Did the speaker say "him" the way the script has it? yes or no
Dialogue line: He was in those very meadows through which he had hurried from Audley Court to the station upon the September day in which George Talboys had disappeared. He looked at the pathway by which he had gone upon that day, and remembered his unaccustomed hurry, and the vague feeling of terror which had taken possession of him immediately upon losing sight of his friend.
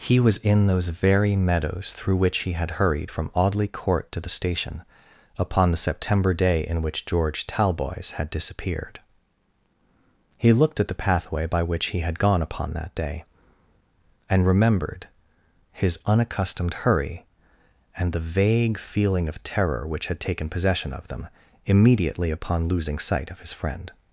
no